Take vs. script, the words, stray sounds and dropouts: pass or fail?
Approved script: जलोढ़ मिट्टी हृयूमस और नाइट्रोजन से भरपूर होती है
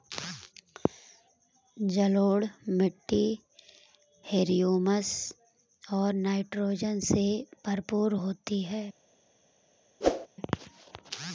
fail